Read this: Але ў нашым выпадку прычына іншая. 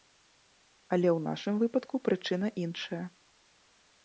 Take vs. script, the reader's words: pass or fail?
pass